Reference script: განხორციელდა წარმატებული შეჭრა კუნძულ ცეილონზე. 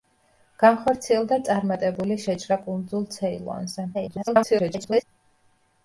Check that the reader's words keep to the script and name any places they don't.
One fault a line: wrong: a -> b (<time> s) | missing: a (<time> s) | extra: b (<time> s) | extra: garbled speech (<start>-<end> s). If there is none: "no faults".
extra: garbled speech (3.9-5.0 s)